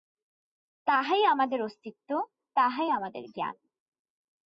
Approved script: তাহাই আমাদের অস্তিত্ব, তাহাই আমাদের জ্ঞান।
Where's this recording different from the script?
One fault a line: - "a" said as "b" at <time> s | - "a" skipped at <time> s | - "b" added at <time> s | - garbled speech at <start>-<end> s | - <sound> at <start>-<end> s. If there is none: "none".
none